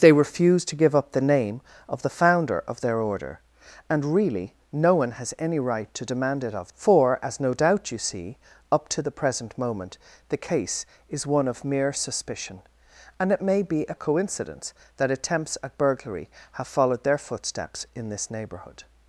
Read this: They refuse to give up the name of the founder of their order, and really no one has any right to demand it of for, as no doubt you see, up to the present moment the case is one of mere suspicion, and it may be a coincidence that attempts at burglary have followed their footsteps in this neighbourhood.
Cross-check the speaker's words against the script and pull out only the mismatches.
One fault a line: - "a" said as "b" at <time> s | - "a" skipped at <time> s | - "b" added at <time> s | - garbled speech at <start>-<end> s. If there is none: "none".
none